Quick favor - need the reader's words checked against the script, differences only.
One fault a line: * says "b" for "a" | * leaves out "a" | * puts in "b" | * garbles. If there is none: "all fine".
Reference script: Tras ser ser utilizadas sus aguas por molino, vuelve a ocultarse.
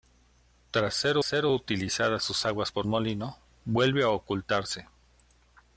all fine